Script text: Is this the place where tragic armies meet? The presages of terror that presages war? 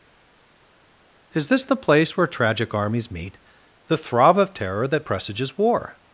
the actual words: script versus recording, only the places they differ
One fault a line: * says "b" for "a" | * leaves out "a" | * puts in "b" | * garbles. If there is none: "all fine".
* says "throb" for "presages"